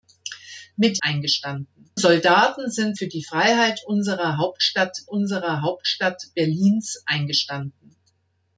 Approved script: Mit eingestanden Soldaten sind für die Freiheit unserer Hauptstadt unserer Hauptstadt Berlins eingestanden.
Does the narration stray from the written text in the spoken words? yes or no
no